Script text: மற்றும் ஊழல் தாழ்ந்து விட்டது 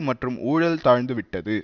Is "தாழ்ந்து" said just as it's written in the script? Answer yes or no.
yes